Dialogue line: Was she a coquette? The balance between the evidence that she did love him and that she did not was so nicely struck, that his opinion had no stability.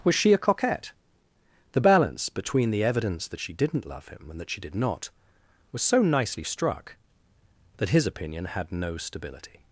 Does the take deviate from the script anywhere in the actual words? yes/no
yes